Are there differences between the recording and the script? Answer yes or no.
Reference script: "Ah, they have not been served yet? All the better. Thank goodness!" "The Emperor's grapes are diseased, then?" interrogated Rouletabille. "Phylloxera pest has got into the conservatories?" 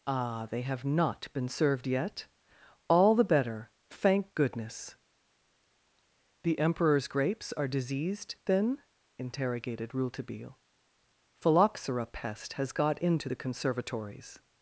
no